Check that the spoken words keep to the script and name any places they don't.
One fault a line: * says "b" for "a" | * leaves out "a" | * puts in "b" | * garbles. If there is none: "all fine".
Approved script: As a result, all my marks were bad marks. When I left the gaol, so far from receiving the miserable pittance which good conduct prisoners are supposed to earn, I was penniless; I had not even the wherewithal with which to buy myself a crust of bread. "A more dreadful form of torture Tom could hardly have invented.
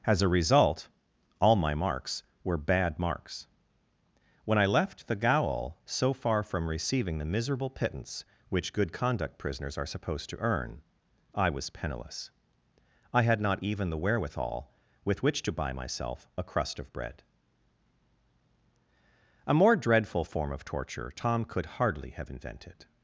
all fine